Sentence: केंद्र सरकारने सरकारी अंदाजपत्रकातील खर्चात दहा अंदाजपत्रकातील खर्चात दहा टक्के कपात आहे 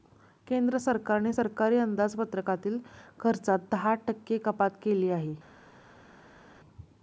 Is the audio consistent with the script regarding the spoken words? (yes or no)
no